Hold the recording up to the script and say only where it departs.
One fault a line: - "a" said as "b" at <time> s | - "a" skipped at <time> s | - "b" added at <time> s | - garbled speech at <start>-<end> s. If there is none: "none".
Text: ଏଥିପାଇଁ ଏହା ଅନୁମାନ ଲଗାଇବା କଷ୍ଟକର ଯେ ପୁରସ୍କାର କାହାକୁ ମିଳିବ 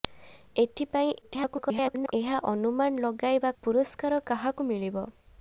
- garbled speech at 1.2-2.1 s
- "କଷ୍ଟକର ଯେ" skipped at 3.5 s